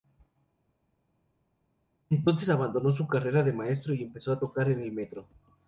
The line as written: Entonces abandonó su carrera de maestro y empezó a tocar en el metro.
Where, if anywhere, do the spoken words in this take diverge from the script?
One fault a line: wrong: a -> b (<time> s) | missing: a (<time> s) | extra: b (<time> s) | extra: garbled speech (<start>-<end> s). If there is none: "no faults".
no faults